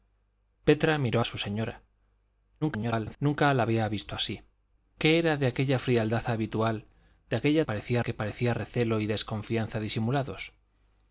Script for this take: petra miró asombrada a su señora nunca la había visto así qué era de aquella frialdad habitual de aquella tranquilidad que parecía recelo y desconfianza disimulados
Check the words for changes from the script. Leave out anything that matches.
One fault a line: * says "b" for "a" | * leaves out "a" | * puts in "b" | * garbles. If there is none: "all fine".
* leaves out "asombrada"
* garbles
* says "parecía" for "tranquilidad"